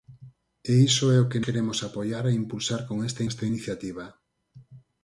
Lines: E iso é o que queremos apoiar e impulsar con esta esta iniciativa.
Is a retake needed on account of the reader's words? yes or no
no